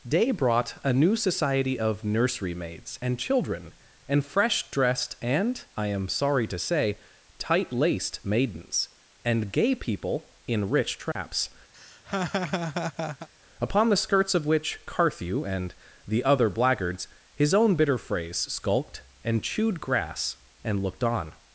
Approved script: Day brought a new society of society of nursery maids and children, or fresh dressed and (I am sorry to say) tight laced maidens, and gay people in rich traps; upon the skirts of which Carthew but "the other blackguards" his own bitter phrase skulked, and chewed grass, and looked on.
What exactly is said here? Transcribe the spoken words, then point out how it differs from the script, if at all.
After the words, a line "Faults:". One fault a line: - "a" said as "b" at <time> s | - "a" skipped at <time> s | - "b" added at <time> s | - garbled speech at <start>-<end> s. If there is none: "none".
Day brought a new society of nursery maids and children, and fresh dressed and (I am sorry to say) tight laced maidens, and gay people in rich traps; upon the skirts of which Carthew and "the other blackguards" his own bitter phrase skulked, and chewed grass, and looked on.
Faults:
- "society of" skipped at 2.0 s
- "or" said as "and" at 4.1 s
- "but" said as "and" at 15.4 s